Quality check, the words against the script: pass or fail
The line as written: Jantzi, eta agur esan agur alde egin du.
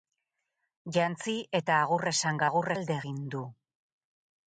pass